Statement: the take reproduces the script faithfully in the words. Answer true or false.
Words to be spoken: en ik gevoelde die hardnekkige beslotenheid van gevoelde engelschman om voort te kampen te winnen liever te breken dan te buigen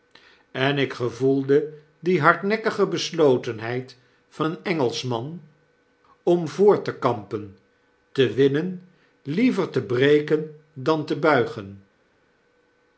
false